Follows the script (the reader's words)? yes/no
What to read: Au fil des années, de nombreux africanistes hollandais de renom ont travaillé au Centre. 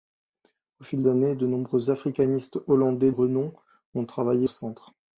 no